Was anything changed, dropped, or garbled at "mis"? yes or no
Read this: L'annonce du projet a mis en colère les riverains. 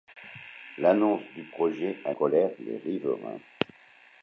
yes